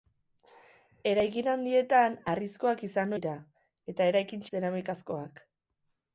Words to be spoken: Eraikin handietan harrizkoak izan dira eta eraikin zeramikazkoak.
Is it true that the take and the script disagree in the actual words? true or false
false